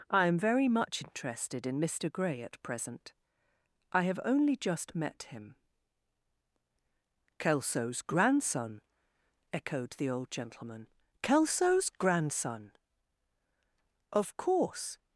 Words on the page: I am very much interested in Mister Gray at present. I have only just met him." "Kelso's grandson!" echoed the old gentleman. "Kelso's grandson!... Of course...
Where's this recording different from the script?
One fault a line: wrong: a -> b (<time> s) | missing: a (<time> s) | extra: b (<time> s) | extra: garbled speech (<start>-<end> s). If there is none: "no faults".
no faults